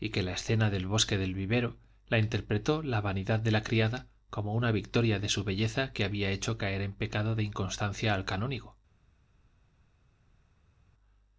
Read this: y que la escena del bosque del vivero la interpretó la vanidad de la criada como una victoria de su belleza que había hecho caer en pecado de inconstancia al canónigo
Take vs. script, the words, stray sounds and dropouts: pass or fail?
pass